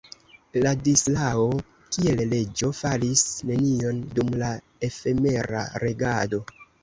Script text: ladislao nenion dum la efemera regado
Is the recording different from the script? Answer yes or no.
yes